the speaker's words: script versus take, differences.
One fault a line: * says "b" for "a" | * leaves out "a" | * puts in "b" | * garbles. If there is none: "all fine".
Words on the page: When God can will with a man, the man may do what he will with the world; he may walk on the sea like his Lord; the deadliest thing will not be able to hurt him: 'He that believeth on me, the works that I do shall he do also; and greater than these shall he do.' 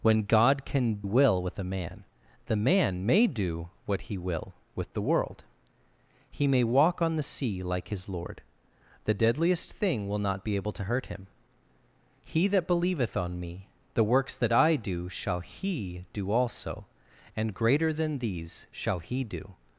all fine